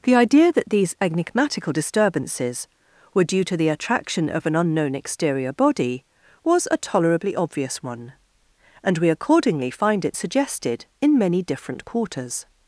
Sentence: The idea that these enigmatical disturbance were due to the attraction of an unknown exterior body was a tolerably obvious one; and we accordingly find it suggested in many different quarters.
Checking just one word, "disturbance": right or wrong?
wrong